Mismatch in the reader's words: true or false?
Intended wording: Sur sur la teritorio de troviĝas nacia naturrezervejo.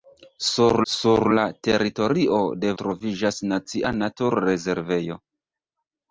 false